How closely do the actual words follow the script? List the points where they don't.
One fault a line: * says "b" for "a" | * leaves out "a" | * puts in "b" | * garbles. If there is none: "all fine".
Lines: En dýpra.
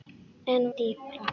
all fine